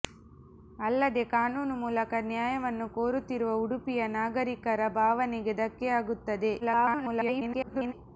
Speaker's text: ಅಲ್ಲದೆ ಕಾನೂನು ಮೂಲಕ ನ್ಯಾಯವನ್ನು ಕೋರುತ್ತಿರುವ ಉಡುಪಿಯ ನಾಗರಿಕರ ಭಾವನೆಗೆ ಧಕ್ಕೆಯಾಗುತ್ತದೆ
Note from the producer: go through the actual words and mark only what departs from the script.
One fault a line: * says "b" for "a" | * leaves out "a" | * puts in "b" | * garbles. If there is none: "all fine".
* garbles